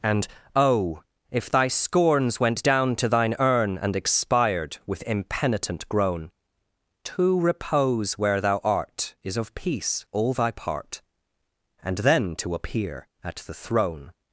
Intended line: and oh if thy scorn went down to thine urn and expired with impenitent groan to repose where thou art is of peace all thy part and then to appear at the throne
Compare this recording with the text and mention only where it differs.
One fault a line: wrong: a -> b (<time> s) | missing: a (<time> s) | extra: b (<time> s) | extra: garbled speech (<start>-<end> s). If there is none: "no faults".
wrong: scorn -> scorns (1.7 s)